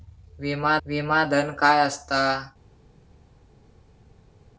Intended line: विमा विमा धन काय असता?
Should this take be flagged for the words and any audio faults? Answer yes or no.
no